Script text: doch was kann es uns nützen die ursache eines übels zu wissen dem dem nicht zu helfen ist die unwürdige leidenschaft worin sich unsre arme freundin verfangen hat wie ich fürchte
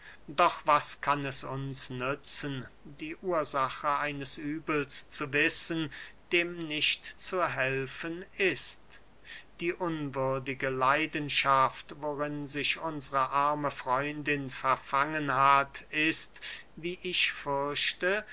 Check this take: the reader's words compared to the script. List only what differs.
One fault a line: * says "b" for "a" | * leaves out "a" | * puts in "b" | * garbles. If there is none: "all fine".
* leaves out "dem"
* puts in "ist"